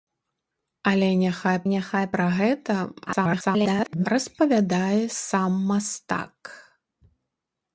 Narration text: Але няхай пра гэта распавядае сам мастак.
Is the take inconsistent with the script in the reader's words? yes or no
yes